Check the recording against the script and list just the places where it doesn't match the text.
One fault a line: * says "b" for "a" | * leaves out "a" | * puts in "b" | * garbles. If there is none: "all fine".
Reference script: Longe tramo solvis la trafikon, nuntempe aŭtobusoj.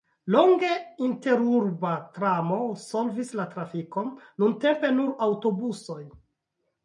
* puts in "interurba"
* puts in "nur"